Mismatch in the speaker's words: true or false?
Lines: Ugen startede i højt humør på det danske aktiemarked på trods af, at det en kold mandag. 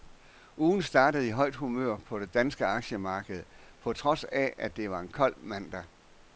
true